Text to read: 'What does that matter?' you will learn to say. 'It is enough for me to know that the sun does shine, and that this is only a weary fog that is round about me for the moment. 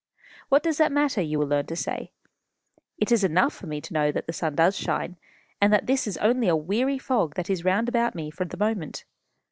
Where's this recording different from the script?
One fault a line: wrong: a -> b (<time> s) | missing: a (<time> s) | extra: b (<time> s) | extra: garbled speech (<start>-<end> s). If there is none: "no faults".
no faults